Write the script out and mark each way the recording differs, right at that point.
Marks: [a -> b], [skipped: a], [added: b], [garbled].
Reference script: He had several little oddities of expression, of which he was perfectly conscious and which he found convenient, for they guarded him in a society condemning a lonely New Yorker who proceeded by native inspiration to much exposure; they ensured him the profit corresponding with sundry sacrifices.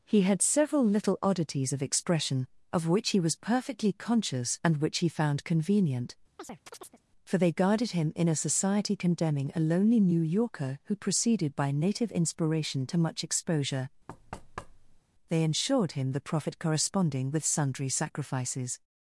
He had several little oddities of expression, of which he was perfectly conscious and which he found convenient, for they guarded him in a society condemning a lonely New Yorker who proceeded by native inspiration to much exposure; they ensured him the profit corresponding with sundry sacrifices.